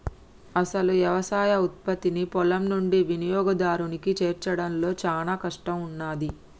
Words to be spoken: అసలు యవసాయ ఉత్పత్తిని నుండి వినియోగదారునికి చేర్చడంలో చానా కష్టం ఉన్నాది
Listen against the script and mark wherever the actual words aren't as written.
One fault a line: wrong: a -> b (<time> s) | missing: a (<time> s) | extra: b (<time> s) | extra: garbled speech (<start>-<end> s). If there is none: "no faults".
extra: పొలం (2.3 s)